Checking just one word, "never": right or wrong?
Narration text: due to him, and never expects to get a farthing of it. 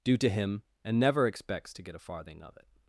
right